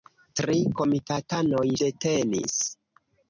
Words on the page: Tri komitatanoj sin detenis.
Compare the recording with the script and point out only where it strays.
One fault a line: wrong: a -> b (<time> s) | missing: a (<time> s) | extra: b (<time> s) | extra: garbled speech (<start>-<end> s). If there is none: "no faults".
missing: sin (1.6 s)